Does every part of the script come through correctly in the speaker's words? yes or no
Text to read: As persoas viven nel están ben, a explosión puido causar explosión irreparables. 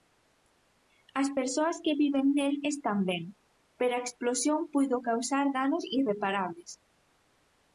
no